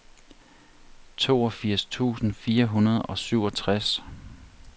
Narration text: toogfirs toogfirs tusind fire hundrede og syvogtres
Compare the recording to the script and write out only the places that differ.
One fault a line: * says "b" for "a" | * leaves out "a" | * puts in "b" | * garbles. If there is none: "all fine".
* leaves out "toogfirs"